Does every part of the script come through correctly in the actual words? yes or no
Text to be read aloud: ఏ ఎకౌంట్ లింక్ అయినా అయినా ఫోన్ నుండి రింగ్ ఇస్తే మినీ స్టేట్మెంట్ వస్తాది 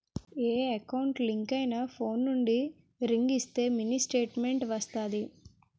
no